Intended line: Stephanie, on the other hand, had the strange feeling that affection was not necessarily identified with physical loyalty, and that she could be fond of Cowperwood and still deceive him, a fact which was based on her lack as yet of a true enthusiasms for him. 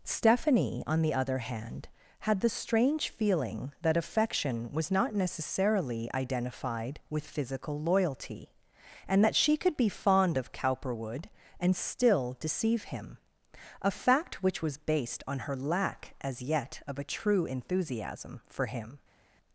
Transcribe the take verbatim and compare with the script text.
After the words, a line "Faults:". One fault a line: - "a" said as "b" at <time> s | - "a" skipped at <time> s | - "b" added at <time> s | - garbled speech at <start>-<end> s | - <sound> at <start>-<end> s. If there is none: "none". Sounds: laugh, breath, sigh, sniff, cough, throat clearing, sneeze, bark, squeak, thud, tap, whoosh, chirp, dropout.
Stephanie, on the other hand, had the strange feeling that affection was not necessarily identified with physical loyalty, and that she could be fond of Cowperwood and still deceive him, a fact which was based on her lack as yet of a true enthusiasm for him.
Faults:
- "enthusiasms" said as "enthusiasm" at 17.5 s